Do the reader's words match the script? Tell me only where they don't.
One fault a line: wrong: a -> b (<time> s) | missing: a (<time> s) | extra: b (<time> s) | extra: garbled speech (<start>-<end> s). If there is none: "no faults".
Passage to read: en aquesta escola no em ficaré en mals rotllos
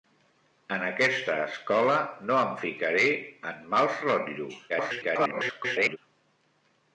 extra: garbled speech (4.7-6.0 s)